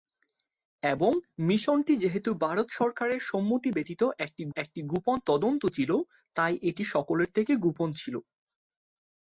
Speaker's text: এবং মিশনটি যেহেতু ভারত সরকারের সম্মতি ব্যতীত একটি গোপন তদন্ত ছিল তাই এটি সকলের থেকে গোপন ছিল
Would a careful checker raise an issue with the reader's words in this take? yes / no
yes